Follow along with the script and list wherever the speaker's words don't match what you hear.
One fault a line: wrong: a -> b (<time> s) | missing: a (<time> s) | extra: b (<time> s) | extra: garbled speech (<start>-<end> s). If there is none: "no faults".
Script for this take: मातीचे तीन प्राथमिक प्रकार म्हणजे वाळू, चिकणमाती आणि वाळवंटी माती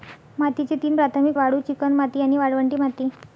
missing: प्रकार म्हणजे (1.3 s)